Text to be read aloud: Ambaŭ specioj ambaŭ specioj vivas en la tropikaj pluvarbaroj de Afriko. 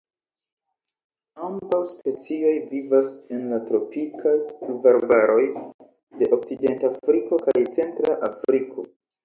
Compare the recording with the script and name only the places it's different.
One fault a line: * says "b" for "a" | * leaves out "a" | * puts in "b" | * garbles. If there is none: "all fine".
* leaves out "ambaŭ specioj"
* puts in "Okcidentafriko kaj Centra"